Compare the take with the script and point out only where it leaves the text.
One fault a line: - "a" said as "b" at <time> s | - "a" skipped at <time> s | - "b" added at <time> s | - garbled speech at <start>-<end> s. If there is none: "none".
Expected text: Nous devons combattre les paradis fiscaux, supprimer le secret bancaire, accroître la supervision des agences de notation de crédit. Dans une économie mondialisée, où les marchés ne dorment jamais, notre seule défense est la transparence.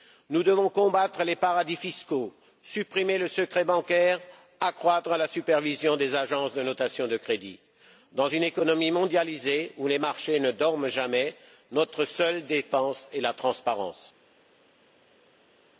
none